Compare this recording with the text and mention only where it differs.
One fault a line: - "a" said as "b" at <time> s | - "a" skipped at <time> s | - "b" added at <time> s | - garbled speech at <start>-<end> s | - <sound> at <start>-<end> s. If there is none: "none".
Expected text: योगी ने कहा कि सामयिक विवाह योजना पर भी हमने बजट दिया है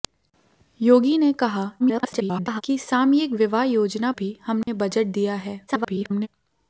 - garbled speech at 1.8-2.6 s
- "पर" skipped at 4.1 s
- dropout at 4.6-4.7 s
- garbled speech at 5.7-6.3 s